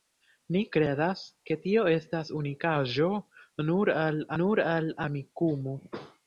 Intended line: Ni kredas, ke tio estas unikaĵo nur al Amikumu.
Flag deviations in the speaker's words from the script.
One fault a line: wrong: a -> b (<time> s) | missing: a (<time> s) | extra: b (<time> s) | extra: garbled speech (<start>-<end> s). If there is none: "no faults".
extra: nur al (4.4 s)